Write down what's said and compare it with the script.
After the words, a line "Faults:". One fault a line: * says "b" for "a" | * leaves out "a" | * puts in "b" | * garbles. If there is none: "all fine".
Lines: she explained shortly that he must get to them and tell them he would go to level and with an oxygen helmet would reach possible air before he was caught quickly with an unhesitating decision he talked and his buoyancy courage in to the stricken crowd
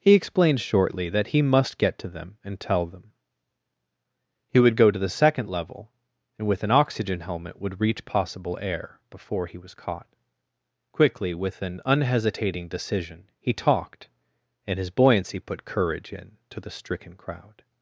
he explained shortly that he must get to them and tell them he would go to the second level and with an oxygen helmet would reach possible air before he was caught quickly with an unhesitating decision he talked and his buoyancy put courage in to the stricken crowd
Faults:
* says "he" for "she"
* puts in "the second"
* puts in "put"